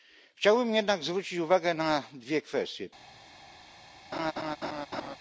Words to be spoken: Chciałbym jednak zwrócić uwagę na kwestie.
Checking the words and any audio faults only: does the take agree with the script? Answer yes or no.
no